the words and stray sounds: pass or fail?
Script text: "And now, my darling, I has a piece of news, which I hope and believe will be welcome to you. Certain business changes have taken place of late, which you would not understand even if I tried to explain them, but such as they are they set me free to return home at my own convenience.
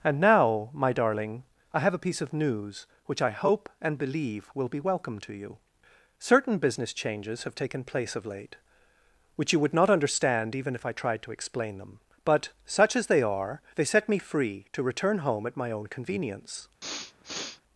fail